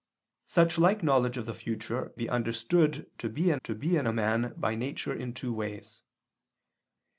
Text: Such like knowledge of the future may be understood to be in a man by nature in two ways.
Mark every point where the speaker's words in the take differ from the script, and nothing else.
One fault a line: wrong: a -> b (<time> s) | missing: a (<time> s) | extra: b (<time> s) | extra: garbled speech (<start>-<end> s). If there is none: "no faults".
wrong: may -> be understood to (2.1 s)
wrong: understood -> in (3.5 s)